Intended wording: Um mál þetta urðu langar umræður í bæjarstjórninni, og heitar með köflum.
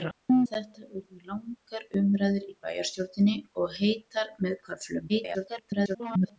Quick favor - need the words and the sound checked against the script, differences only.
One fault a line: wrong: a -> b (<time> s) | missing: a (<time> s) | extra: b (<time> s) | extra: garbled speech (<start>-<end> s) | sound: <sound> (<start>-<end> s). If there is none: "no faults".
missing: mál (0.4 s)
extra: garbled speech (5.1-6.4 s)